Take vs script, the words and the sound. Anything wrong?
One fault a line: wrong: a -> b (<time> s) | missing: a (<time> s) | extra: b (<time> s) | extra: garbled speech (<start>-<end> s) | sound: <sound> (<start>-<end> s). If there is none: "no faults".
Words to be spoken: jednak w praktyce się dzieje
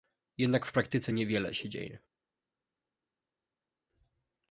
extra: niewiele (1.1 s)